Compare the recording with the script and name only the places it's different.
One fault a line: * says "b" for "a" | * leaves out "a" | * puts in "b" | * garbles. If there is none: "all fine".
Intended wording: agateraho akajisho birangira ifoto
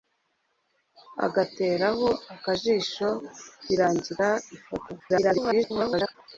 * garbles